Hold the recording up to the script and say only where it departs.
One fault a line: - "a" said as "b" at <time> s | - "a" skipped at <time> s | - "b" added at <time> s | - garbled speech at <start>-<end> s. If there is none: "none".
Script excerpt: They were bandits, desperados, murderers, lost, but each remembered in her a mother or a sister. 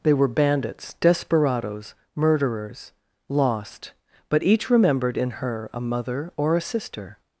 none